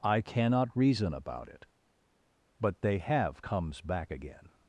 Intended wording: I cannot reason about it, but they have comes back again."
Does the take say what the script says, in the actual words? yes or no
yes